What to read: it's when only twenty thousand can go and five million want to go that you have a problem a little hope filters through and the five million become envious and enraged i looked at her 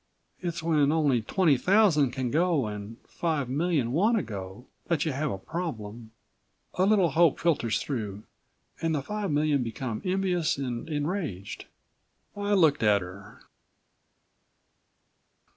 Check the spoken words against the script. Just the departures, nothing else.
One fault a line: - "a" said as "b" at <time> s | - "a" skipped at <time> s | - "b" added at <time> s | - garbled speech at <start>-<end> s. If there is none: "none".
none